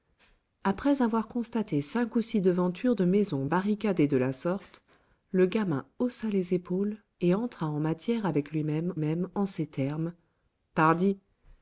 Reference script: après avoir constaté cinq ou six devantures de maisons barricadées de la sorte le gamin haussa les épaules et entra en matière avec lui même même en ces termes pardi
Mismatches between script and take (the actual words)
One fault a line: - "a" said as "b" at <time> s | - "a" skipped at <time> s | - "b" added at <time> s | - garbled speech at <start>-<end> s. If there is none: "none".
none